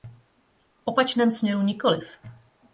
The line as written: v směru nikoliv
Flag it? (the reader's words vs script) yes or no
yes